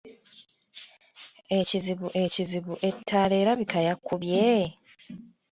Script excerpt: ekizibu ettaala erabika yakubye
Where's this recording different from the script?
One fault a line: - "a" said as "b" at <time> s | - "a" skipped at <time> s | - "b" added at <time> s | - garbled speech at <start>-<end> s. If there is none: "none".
- "ekizibu" added at 2.2 s